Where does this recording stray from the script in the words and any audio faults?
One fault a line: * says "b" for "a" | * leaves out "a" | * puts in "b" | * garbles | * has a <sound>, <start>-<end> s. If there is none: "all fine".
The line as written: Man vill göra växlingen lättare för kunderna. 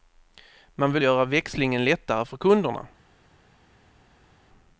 all fine